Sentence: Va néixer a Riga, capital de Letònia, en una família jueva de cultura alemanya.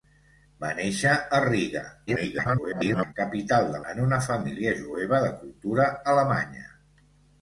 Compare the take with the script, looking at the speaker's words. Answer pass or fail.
fail